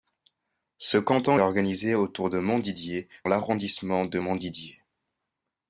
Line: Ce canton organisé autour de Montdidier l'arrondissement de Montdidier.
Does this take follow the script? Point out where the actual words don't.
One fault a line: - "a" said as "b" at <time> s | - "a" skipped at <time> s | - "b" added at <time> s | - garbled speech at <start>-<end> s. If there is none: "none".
none